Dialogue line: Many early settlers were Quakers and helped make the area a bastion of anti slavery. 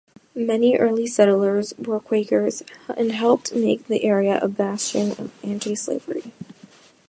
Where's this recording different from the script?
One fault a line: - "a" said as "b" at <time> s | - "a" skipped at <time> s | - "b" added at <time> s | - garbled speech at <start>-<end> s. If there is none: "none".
none